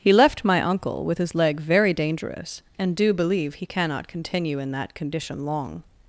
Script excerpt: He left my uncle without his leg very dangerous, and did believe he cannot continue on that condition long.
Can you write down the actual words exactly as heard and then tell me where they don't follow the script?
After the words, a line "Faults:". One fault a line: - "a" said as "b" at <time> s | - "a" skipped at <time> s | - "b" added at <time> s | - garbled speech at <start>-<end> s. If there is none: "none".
He left my uncle with his leg very dangerous, and do believe he cannot continue in that condition long.
Faults:
- "without" said as "with" at 1.1 s
- "did" said as "do" at 3.0 s
- "on" said as "in" at 4.6 s